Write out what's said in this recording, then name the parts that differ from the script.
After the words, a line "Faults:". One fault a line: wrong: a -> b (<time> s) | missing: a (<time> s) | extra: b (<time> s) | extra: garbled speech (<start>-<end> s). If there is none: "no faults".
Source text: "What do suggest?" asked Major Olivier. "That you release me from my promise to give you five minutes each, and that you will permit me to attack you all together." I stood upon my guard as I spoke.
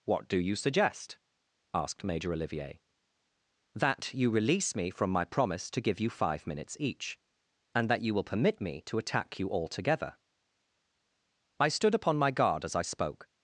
"What do you suggest?" asked Major Olivier. "That you release me from my promise to give you five minutes each, and that you will permit me to attack you all together." I stood upon my guard as I spoke.
Faults:
extra: you (0.4 s)